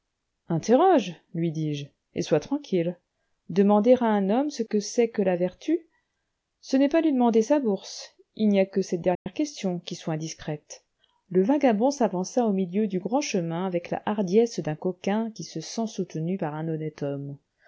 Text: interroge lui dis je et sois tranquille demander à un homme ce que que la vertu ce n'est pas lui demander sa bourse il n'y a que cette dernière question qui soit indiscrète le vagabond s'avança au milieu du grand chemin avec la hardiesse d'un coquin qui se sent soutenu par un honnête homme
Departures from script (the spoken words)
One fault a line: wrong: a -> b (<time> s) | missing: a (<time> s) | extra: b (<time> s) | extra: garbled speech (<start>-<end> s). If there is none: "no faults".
extra: c'est (4.8 s)